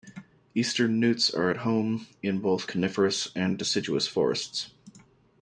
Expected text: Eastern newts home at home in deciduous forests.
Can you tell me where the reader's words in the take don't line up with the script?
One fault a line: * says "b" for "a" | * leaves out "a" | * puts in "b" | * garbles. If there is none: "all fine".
* says "are" for "home"
* puts in "both coniferous and"